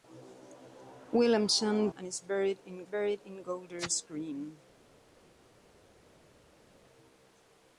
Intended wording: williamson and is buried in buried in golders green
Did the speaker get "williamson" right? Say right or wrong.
right